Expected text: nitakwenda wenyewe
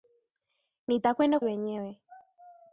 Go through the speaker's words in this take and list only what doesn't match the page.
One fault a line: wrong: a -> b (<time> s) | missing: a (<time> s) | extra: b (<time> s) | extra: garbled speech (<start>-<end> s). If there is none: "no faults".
no faults